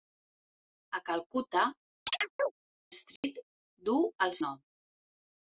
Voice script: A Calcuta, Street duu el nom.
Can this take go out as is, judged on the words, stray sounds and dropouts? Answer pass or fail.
fail